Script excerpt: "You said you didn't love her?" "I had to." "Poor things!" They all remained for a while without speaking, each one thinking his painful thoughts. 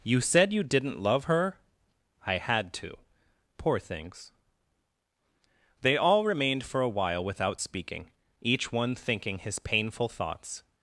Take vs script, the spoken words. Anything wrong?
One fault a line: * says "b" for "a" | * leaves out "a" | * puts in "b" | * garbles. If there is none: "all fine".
all fine